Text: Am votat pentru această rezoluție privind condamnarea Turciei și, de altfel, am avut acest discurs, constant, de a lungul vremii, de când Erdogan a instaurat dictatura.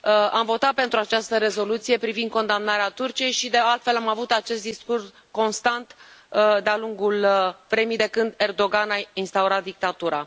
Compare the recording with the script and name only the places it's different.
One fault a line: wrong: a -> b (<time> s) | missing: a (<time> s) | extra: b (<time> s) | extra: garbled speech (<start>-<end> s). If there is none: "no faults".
no faults